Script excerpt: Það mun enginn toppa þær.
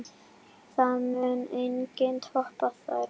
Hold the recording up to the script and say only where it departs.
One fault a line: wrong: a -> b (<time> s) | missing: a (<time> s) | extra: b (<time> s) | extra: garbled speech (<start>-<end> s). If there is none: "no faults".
no faults